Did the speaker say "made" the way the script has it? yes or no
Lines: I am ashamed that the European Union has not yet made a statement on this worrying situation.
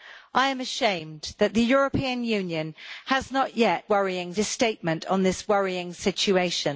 no